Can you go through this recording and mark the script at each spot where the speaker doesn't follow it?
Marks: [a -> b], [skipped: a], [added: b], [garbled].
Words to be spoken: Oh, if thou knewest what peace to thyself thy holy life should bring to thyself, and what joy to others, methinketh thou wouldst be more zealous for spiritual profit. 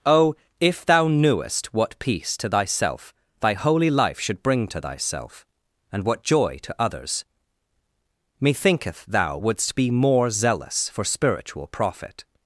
Oh, if thou knewest what peace to thyself thy holy life should bring to thyself, and what joy to others, methinketh thou wouldst be more zealous for spiritual profit.